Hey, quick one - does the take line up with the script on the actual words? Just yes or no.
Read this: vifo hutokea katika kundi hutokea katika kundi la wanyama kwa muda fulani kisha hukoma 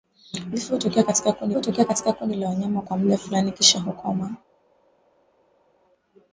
yes